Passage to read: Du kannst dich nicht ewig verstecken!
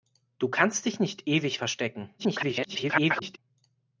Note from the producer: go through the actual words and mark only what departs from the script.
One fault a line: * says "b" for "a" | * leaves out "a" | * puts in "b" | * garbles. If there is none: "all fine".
* garbles